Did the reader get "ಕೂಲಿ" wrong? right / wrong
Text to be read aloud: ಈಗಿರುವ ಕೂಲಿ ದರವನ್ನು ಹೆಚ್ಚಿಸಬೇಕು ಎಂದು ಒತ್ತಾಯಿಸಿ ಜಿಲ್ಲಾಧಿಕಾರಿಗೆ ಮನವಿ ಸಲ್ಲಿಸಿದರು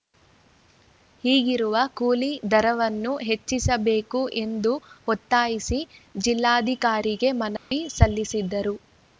right